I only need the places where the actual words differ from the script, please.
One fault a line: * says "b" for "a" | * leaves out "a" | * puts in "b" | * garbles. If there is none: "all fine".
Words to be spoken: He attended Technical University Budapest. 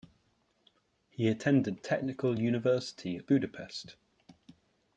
all fine